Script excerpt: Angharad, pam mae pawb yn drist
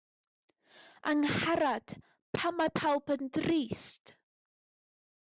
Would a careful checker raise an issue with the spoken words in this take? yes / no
no